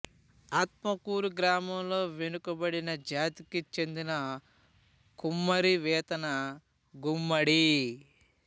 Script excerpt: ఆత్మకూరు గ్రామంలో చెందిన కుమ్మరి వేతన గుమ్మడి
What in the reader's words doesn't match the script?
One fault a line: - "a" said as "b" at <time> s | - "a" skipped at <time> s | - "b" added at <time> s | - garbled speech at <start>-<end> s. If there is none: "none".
- "వెనుకబడిన జాతికి" added at 2.1 s